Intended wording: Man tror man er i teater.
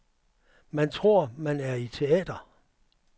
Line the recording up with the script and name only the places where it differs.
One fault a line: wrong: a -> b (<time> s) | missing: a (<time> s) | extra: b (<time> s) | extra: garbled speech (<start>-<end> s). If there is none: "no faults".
no faults